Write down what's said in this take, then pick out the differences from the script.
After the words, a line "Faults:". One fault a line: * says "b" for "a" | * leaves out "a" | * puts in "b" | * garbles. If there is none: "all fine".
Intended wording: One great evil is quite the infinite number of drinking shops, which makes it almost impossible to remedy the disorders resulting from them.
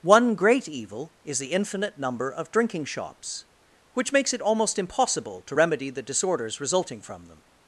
One great evil is the infinite number of drinking shops, which makes it almost impossible to remedy the disorders resulting from them.
Faults:
* leaves out "quite"